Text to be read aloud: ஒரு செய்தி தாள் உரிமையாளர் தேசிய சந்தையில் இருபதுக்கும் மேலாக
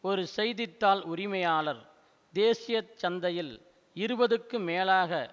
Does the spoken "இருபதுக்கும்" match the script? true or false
true